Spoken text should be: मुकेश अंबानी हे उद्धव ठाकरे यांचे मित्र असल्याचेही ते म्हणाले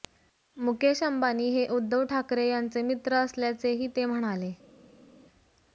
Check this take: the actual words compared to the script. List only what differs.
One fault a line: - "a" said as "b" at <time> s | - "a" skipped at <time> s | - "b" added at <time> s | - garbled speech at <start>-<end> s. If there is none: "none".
none